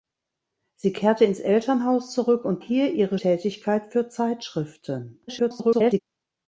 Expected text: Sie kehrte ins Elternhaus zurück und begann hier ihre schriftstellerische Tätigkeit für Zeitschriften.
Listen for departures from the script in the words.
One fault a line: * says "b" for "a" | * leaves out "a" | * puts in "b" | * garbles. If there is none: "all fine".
* leaves out "begann"
* leaves out "schriftstellerische"
* garbles